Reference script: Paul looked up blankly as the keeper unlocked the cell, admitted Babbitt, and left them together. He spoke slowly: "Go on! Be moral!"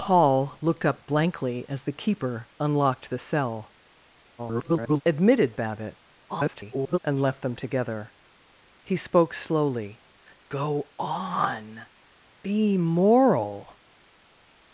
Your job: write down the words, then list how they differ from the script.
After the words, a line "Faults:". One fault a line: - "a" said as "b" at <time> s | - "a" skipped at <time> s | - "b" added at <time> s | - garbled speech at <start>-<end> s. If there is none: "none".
Paul looked up blankly as the keeper unlocked the cell, [garbled] admitted Babbitt, [garbled] and left them together. He spoke slowly: "Go on! Be moral!"
Faults:
- garbled speech at 4.4-5.0 s
- garbled speech at 6.3-7.0 s